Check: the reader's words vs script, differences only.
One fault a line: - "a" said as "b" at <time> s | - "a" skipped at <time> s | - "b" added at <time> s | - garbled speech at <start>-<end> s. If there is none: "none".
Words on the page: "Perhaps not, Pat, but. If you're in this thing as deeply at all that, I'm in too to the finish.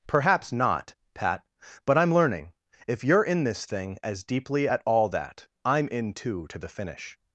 - "I'm learning" added at 1.9 s